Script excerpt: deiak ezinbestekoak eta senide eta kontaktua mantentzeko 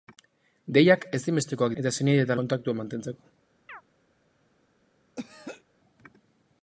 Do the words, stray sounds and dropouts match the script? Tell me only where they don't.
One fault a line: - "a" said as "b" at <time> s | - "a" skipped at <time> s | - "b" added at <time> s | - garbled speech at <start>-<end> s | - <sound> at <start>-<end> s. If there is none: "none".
- chirp at 3.7-3.8 s
- throat clearing at 5.2-5.6 s